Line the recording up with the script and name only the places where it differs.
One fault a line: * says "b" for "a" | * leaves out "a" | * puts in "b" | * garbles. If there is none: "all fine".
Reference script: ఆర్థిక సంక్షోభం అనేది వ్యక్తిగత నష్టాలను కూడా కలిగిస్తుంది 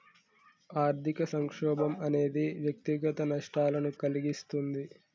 * leaves out "కూడా"